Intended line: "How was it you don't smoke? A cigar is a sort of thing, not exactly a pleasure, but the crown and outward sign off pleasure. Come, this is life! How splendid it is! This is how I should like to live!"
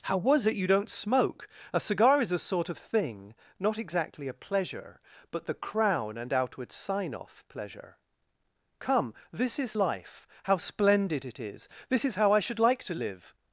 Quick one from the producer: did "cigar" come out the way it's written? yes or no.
yes